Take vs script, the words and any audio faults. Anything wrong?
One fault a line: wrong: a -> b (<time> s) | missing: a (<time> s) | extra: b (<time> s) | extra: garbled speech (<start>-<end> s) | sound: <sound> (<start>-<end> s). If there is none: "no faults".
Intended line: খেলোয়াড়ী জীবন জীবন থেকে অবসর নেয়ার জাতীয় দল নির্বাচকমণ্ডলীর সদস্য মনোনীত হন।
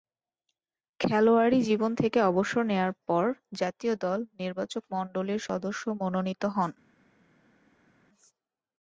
missing: জীবন (1.9 s)
extra: পর (3.1 s)